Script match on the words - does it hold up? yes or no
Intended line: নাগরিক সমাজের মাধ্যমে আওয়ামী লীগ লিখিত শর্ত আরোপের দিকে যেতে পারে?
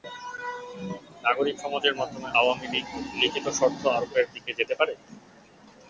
yes